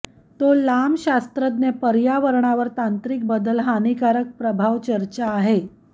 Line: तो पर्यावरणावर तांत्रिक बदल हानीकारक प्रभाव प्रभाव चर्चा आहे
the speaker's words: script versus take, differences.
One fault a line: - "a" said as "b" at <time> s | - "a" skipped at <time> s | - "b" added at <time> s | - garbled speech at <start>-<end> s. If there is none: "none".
- "लांब शास्त्रज्ञ" added at 0.5 s
- "प्रभाव" skipped at 4.8 s